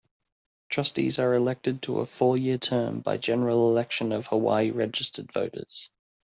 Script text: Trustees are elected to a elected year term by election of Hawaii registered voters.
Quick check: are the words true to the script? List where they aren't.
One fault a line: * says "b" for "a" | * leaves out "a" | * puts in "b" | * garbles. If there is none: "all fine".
* says "four" for "elected"
* puts in "general"